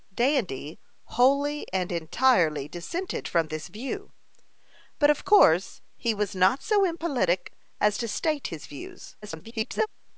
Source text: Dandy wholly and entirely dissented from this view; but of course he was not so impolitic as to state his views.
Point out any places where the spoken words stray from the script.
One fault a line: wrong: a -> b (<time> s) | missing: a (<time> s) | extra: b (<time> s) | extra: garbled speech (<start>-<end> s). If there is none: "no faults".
extra: garbled speech (9.2-9.9 s)